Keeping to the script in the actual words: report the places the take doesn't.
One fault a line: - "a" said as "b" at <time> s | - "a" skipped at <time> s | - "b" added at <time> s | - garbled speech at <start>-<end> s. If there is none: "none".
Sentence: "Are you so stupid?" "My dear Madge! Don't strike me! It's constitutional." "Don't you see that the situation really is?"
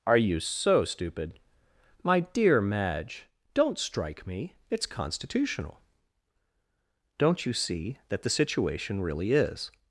none